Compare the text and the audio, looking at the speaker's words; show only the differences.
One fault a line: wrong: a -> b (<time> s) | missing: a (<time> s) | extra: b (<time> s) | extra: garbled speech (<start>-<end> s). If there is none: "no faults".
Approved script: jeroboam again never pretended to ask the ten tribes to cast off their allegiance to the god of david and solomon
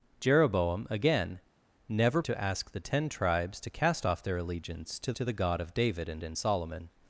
missing: pretended (2.2 s)
extra: to (5.1 s)
extra: and (6.2 s)